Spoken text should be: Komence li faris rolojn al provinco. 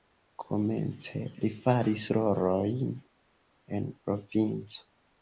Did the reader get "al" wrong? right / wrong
wrong